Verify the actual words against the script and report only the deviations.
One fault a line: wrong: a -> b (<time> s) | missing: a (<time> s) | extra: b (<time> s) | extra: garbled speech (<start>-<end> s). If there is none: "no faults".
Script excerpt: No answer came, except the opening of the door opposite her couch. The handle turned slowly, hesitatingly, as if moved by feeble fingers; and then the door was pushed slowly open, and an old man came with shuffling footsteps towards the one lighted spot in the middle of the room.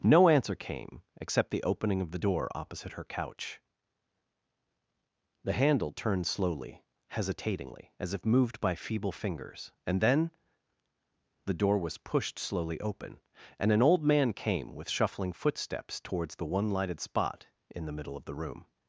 no faults